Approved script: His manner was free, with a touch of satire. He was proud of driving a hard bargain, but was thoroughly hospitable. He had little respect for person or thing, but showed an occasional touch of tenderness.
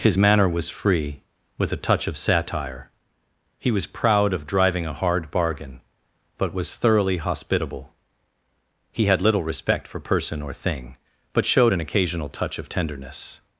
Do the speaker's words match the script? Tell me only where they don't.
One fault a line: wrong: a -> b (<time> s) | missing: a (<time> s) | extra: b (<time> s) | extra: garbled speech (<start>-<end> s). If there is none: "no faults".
no faults